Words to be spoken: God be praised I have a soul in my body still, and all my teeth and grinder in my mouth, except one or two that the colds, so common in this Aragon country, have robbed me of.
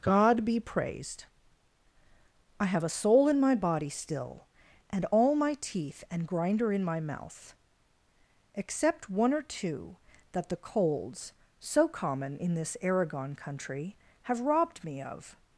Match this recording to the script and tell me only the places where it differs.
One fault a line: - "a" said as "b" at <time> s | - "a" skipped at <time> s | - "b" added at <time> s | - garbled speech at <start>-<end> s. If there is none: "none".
none